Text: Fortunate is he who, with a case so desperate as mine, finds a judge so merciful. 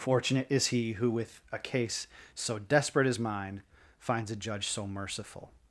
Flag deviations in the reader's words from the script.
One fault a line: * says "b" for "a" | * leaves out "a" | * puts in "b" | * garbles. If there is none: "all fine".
all fine